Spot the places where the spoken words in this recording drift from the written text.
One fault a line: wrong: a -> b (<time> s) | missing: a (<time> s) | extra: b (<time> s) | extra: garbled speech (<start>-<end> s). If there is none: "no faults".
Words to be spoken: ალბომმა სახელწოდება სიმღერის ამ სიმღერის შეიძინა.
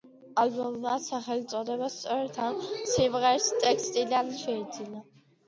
wrong: სიმღერის -> სწორედ (2.0 s)
extra: ტექსტიდან (3.7 s)